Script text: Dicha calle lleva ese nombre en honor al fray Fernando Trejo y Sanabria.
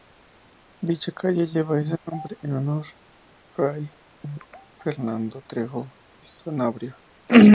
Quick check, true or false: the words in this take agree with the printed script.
false